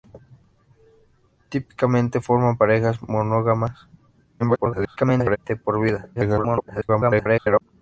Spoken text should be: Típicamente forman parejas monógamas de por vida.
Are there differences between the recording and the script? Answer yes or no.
yes